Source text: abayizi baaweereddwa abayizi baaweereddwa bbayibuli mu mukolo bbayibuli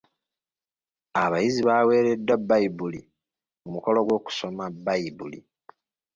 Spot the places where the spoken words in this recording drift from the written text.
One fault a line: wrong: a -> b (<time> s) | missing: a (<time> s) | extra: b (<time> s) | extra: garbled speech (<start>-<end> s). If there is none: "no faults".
missing: abayizi baaweereddwa (2.4 s)
extra: gw'okusoma (4.1 s)